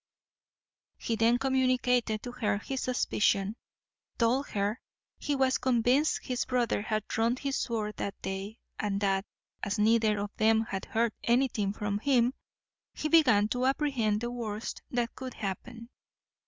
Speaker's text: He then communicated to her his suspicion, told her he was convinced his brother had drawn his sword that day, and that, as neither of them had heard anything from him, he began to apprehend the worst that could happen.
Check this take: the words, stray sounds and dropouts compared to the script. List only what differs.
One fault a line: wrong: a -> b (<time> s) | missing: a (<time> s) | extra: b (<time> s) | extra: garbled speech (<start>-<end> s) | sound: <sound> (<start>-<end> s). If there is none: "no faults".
no faults